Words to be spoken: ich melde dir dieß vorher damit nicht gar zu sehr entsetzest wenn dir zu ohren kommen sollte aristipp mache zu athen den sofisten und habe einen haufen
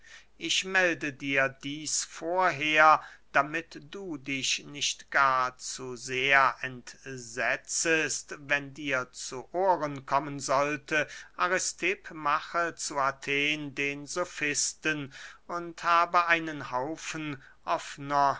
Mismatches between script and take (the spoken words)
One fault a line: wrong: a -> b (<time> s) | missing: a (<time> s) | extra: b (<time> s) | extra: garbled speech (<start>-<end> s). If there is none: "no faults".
extra: du dich (3.9 s)